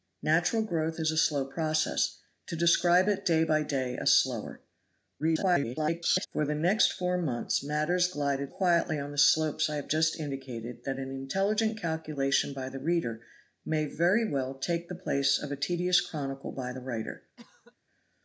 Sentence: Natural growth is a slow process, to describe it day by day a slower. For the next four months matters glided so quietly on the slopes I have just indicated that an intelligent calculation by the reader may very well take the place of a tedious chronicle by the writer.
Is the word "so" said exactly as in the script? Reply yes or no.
no